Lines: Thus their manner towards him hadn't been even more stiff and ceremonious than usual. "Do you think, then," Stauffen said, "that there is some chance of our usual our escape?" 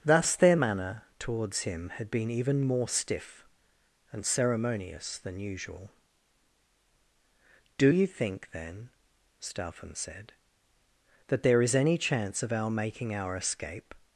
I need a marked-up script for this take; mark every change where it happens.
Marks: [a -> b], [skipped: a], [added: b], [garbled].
Thus their manner towards him [hadn't -> had] been even more stiff and ceremonious than usual. "Do you think, then," Stauffen said, "that there is [some -> any] chance of our [usual -> making] our escape?"